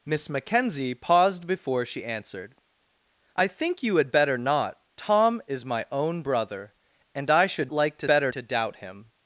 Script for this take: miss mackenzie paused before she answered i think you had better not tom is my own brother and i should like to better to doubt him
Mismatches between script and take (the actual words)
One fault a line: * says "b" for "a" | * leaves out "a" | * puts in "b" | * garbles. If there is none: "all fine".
all fine